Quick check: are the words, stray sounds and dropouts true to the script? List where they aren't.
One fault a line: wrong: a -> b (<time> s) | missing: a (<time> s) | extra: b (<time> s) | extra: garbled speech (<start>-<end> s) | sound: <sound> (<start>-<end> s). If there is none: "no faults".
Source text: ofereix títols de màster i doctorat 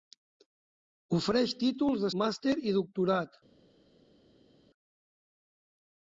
no faults